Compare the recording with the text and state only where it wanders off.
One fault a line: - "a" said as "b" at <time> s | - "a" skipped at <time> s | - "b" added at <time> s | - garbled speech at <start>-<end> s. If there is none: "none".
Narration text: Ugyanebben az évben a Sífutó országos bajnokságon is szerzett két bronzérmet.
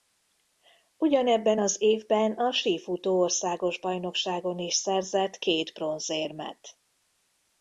none